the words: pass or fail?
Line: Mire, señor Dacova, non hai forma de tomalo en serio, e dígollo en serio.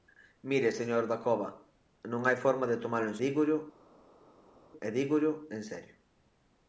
fail